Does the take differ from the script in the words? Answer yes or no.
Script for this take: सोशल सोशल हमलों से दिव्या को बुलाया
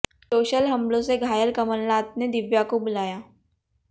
yes